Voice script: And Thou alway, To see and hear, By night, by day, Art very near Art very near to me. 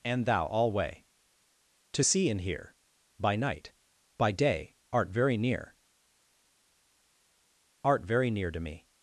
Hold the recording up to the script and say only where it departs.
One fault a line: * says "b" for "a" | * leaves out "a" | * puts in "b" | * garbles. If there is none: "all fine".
all fine